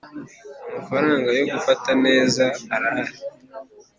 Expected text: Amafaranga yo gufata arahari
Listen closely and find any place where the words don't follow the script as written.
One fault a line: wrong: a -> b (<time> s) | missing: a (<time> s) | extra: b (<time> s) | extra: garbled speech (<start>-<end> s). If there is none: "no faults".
extra: neza (2.0 s)